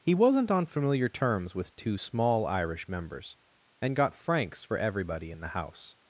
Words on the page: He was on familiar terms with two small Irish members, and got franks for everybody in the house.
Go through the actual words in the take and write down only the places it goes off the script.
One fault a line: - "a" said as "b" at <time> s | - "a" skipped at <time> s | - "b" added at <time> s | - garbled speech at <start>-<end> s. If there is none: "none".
- "was" said as "wasn't" at 0.1 s